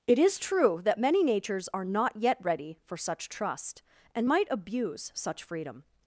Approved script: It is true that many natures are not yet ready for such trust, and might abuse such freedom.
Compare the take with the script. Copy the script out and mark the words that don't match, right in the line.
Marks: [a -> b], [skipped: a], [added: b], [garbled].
It is true that many natures are not yet ready for such trust, and might abuse such freedom.